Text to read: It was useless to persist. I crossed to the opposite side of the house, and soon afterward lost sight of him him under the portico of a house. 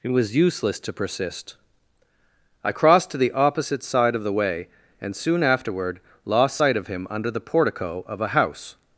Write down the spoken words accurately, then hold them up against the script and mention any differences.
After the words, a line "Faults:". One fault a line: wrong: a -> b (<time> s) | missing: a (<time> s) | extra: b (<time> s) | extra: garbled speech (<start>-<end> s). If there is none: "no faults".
It was useless to persist. I crossed to the opposite side of the way, and soon afterward lost sight of him under the portico of a house.
Faults:
wrong: house -> way (4.3 s)
missing: him (7.1 s)